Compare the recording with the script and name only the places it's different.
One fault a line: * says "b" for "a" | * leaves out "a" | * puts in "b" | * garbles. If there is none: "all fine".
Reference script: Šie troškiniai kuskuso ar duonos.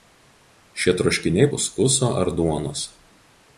all fine